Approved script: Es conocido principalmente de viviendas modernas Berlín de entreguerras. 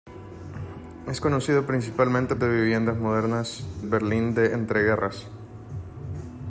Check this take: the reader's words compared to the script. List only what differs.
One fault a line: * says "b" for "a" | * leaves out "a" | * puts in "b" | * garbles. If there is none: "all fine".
all fine